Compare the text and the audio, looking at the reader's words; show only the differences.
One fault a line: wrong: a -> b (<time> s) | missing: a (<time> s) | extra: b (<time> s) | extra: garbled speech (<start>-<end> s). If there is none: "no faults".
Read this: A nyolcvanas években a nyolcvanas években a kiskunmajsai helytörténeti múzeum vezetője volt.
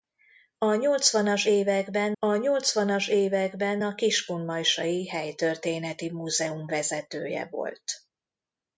no faults